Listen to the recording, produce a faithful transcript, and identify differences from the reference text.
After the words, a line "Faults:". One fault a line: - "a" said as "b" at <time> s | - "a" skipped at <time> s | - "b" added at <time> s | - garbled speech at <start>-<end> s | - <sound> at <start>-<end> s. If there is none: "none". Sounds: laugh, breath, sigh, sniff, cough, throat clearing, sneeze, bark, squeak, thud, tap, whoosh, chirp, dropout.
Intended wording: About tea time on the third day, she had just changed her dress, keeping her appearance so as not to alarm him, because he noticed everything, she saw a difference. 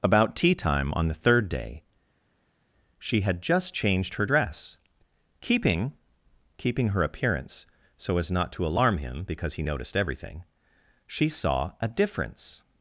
About tea time on the third day, she had just changed her dress, keeping keeping her appearance so as not to alarm him, because he noticed everything, she saw a difference.
Faults:
- "keeping" added at 6.6 s